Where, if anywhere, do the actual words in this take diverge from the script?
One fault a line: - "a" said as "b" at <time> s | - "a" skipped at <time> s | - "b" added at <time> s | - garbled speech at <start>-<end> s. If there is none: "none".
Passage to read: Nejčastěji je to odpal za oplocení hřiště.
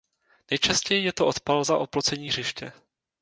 none